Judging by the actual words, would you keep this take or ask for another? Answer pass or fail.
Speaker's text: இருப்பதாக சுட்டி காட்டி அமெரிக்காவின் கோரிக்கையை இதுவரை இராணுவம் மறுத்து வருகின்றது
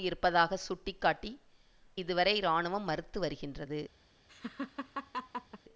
fail